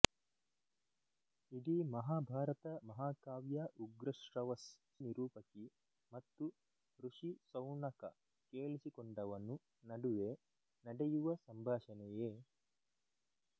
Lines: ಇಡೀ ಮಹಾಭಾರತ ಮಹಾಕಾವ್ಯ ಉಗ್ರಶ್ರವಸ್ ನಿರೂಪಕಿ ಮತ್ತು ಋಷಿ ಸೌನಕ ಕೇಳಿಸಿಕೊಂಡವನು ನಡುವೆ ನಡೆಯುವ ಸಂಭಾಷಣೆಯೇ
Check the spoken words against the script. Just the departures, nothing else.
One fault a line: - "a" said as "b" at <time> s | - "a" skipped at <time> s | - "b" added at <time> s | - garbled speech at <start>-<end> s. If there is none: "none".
none